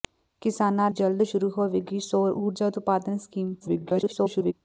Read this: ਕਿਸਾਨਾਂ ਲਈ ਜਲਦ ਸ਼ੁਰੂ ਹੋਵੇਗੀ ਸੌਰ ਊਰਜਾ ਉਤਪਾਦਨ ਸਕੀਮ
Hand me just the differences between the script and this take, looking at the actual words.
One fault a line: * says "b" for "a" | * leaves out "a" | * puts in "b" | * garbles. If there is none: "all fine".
* leaves out "ਲਈ"
* garbles